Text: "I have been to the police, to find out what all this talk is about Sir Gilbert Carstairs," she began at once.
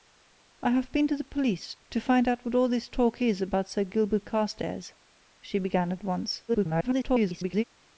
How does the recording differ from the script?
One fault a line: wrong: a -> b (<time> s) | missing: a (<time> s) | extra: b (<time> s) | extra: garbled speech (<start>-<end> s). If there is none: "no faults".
extra: garbled speech (6.5-7.6 s)